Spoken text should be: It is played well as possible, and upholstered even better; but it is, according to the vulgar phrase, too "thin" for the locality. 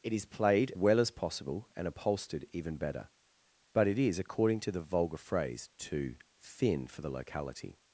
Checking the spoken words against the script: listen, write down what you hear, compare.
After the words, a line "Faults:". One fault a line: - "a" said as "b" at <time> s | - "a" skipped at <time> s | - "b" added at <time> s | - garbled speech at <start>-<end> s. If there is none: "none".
It is played well as possible, and upholstered even better; but it is, according to the vulgar phrase, too "thin" for the locality.
Faults:
none